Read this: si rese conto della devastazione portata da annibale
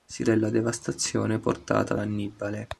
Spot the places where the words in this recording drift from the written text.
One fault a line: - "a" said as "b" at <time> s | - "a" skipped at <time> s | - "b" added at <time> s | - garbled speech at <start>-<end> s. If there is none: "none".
- "rese conto" skipped at 0.2 s
- "da" skipped at 2.0 s